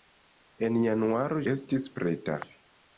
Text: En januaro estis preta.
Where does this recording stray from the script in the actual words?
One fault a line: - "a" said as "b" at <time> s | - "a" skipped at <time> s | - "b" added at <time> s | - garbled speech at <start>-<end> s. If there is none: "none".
none